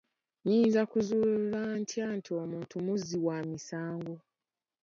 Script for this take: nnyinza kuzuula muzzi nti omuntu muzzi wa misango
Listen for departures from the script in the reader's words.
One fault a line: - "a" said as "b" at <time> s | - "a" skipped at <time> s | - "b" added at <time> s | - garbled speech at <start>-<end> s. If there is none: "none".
- "muzzi" said as "ntya" at 1.8 s